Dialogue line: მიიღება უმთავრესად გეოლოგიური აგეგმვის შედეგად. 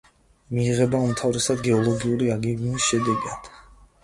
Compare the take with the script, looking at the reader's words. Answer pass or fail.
pass